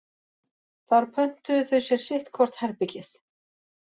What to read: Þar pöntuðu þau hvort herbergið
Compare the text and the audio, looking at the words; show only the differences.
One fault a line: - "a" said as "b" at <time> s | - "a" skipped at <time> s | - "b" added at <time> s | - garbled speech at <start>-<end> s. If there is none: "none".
- "sér sitt" added at 1.9 s